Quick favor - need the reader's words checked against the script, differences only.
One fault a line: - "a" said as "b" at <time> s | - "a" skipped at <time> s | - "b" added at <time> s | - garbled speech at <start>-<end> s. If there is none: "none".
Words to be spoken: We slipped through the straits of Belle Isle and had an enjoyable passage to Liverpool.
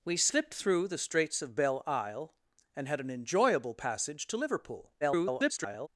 - garbled speech at 5.0-5.9 s